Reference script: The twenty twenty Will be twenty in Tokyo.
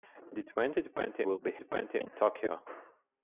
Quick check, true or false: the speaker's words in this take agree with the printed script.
true